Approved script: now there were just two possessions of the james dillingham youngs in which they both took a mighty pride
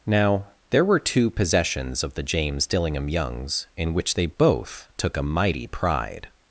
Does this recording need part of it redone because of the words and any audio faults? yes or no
yes